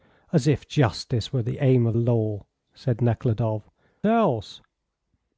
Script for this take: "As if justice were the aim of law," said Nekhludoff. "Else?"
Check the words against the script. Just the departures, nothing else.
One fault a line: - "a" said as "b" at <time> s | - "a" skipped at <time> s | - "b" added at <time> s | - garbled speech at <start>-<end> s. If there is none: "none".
none